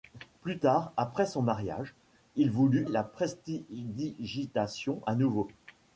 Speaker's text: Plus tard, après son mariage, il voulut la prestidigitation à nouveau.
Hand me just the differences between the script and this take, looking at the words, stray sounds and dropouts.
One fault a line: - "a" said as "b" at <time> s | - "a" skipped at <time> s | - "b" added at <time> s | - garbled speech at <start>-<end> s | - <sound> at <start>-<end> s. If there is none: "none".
none